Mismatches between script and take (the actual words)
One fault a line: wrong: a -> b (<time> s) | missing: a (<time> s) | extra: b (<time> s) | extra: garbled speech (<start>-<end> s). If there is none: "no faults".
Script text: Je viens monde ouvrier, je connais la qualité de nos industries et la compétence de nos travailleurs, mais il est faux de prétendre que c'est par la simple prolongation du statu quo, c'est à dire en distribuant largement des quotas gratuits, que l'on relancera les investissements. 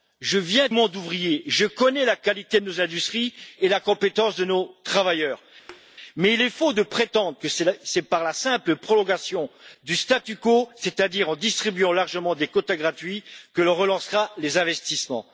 no faults